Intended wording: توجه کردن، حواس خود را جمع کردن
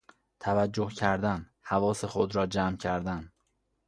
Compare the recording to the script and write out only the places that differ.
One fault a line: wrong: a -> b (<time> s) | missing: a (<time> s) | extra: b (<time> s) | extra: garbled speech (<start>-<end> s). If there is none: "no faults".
no faults